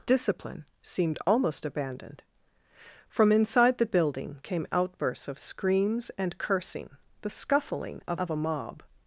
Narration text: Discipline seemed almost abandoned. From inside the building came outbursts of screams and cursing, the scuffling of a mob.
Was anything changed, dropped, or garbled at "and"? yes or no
no